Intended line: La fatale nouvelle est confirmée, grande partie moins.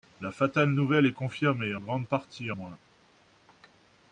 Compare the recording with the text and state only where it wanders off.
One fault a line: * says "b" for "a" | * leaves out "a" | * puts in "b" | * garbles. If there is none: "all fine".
all fine